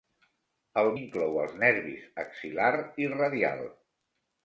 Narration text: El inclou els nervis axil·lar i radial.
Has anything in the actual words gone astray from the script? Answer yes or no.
no